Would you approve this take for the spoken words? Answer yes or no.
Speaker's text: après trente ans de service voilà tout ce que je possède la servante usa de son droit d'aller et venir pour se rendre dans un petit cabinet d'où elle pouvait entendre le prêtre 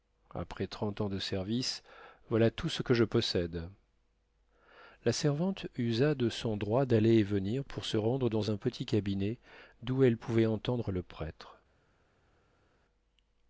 yes